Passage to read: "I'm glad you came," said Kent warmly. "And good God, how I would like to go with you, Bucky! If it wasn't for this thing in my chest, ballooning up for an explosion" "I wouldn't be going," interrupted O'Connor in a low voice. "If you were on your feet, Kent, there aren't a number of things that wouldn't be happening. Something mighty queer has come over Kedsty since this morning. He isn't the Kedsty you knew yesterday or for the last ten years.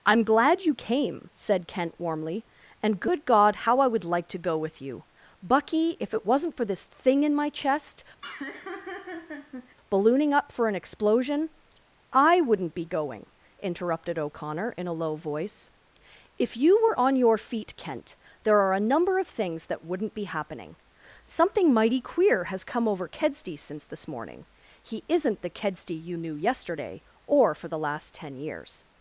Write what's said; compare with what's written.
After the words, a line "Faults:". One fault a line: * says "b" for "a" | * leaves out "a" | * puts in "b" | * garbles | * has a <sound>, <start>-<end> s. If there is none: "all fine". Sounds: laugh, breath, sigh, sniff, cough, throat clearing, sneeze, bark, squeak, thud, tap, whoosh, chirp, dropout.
"I'm glad you came," said Kent warmly. "And good God, how I would like to go with you, Bucky! If it wasn't for this thing in my chest, ballooning up for an explosion" "I wouldn't be going," interrupted O'Connor in a low voice. "If you were on your feet, Kent, there are a number of things that wouldn't be happening. Something mighty queer has come over Kedsty since this morning. He isn't the Kedsty you knew yesterday or for the last ten years.
Faults:
* has a laugh, 8.2-9.8 s
* says "are" for "aren't"